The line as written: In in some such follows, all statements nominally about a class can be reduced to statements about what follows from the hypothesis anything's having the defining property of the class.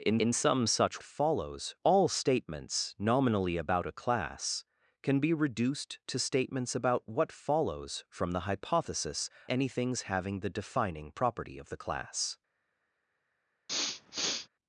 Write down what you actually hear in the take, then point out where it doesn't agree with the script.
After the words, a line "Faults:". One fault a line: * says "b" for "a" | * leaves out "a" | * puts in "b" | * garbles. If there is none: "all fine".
In in some such follows, all statements nominally about a class can be reduced to statements about what follows from the hypothesis anything's having the defining property of the class.
Faults:
all fine